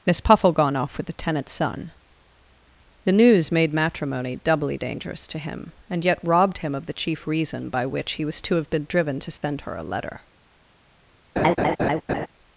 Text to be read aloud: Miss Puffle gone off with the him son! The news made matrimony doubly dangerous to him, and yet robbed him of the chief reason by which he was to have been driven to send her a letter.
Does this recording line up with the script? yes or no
no